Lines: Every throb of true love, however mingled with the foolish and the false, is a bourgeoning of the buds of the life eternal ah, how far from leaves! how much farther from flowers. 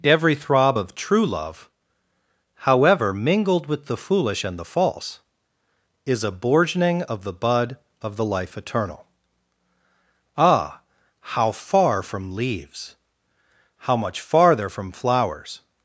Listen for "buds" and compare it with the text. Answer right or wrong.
wrong